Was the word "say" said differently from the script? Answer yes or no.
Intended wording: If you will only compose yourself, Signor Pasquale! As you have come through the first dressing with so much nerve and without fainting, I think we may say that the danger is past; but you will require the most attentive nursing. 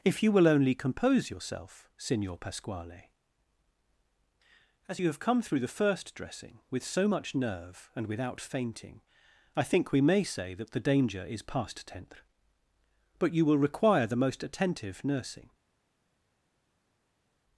no